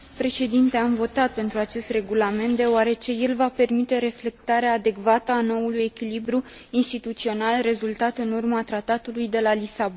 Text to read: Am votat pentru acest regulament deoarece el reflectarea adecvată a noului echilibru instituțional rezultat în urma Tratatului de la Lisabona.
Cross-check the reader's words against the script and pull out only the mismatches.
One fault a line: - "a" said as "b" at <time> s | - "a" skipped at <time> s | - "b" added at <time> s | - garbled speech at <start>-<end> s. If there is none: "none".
- "va permite" added at 3.4 s